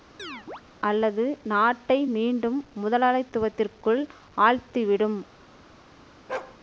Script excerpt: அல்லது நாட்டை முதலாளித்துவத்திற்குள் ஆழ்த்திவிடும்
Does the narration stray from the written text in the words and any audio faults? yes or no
yes